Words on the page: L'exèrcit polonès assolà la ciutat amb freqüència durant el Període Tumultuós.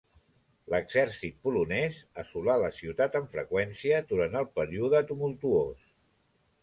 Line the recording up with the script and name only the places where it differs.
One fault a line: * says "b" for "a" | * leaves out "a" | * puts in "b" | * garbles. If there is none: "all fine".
all fine